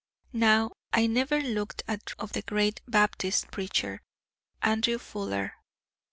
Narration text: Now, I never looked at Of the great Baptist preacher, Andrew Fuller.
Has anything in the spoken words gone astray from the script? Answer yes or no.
no